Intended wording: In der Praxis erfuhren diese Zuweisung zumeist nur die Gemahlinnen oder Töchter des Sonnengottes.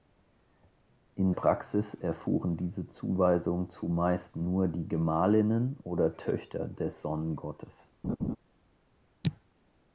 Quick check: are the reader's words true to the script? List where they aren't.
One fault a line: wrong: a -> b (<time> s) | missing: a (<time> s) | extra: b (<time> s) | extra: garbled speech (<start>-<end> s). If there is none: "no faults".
missing: der (1.3 s)